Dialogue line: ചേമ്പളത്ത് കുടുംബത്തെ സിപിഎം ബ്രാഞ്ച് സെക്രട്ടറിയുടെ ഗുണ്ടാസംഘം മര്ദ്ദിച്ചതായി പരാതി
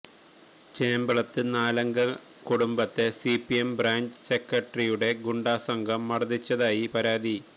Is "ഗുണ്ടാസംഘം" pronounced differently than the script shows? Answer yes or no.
no